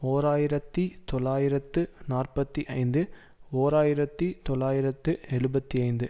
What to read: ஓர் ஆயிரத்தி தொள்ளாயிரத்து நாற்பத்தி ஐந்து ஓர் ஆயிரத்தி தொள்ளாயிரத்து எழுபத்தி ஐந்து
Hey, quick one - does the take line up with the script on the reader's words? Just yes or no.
yes